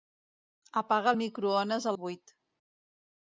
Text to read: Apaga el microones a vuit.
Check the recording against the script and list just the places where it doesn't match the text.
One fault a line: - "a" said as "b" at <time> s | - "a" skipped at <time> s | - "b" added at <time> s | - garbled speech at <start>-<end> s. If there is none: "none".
none